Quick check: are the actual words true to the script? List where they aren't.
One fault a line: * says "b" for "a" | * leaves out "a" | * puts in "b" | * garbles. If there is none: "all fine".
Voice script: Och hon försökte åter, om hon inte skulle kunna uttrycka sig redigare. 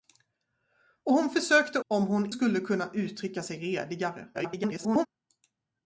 * leaves out "åter"
* leaves out "inte"
* garbles